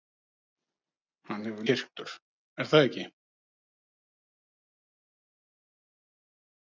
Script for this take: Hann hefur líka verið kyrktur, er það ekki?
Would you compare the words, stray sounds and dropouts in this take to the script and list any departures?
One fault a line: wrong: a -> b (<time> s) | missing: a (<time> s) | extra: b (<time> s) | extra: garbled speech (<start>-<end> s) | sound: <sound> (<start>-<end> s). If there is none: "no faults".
missing: líka verið (1.7 s)